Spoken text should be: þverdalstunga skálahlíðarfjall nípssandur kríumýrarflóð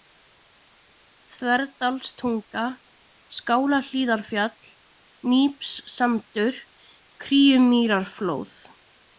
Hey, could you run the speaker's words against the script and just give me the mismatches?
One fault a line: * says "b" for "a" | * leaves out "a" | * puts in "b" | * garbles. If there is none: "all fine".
all fine